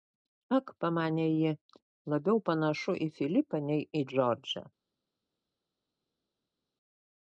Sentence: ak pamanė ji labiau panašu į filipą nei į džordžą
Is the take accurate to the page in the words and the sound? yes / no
yes